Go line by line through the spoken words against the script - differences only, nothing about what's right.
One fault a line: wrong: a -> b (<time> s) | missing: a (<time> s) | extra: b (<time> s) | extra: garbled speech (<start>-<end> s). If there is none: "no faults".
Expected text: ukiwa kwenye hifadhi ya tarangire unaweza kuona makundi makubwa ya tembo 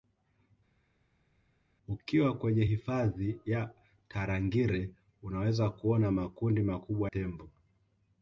missing: ya (7.1 s)